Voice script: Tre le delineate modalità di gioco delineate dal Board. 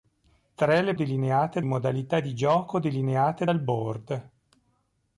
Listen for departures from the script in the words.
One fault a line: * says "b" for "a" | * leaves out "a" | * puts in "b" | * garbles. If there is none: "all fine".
all fine